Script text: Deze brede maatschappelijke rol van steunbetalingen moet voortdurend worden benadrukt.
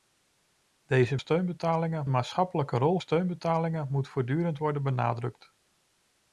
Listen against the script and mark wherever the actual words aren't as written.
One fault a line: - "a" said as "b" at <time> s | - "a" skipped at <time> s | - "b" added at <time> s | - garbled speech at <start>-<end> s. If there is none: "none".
- "brede" said as "steunbetalingen" at 1.2 s
- "van" skipped at 3.0 s